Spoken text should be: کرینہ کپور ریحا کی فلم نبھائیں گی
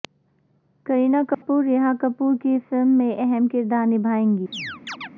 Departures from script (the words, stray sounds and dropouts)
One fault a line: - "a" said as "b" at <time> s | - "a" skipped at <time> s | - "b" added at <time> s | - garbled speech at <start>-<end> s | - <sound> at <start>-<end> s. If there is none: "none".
- dropout at 1.3-1.4 s
- "کپور" added at 2.0 s
- "میں اہم کردار" added at 3.0 s
- chirp at 4.5-5.1 s